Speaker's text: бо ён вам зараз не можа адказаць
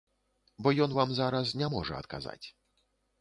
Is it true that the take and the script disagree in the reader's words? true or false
false